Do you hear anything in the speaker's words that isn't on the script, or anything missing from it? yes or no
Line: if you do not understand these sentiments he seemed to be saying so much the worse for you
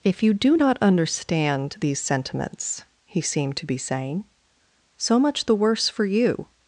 no